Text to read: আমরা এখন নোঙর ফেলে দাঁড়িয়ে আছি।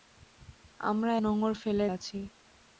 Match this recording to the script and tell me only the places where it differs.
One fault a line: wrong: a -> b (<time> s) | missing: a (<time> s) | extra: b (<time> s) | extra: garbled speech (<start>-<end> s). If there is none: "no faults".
missing: এখন (1.1 s)
missing: দাঁড়িয়ে (1.9 s)